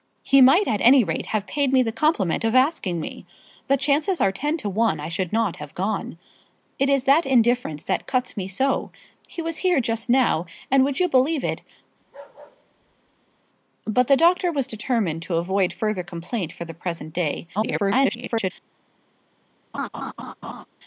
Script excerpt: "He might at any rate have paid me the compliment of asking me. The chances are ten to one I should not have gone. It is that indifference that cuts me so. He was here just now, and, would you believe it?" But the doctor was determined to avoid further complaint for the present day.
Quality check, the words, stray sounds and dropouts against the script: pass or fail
fail